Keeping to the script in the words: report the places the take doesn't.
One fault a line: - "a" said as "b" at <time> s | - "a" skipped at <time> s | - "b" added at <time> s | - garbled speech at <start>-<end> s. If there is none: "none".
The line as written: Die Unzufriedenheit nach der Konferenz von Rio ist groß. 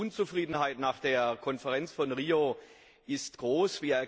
none